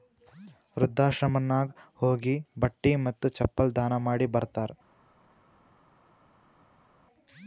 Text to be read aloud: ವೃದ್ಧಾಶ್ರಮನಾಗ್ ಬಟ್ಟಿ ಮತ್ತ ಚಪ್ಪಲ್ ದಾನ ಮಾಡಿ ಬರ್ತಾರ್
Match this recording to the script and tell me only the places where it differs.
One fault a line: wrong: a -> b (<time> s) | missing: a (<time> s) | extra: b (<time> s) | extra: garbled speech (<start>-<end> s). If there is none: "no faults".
extra: ಹೋಗಿ (2.0 s)